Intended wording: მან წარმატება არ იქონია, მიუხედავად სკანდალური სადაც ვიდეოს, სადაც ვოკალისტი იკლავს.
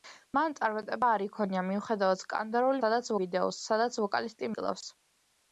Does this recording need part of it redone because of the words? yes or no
no